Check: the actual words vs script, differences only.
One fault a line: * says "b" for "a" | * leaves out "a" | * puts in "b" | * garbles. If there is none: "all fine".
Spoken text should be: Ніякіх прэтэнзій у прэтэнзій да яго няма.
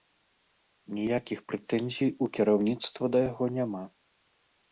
* says "кіраўніцтва" for "прэтэнзій"